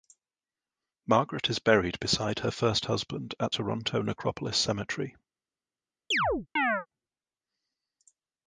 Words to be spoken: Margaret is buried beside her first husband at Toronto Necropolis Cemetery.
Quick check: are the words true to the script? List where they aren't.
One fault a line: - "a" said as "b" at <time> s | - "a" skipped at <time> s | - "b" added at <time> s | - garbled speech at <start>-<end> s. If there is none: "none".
none